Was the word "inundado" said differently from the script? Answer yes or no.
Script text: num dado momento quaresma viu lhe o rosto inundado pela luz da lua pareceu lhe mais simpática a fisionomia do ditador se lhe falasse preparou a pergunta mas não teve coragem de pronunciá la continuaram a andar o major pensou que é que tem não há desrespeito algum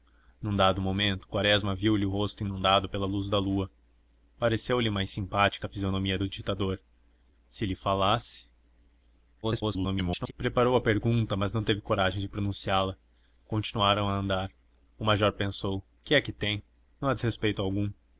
no